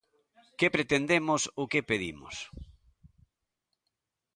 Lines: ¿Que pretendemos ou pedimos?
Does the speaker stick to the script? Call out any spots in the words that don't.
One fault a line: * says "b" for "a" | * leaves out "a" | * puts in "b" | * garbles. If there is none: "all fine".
* puts in "que"